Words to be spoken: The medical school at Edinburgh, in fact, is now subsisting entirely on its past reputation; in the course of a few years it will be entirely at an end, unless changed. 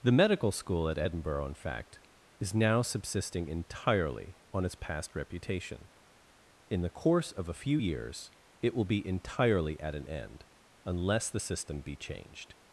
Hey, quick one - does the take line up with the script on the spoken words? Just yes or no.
no